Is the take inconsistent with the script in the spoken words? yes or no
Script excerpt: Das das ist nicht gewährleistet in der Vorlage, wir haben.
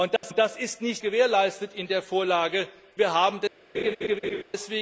no